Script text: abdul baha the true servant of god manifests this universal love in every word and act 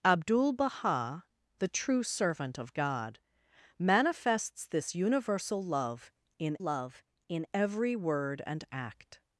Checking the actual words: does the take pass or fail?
fail